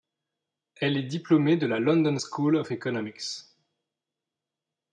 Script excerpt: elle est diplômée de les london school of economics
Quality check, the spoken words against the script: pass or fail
fail